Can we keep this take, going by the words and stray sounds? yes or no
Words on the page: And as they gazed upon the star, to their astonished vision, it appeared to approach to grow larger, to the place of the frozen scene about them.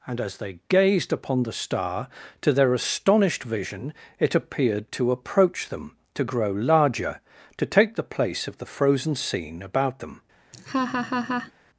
no